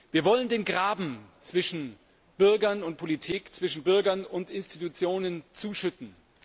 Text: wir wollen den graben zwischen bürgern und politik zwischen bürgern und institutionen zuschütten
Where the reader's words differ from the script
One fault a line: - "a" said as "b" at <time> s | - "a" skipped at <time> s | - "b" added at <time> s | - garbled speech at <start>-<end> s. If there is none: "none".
none